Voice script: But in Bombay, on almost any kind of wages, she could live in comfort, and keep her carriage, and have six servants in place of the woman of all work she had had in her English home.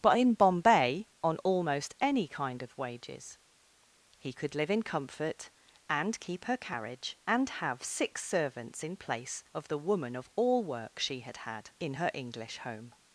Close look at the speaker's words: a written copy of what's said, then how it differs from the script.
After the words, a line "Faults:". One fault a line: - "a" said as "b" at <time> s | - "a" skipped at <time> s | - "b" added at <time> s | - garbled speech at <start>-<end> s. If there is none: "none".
But in Bombay, on almost any kind of wages, he could live in comfort, and keep her carriage, and have six servants in place of the woman of all work she had had in her English home.
Faults:
- "she" said as "he" at 4.2 s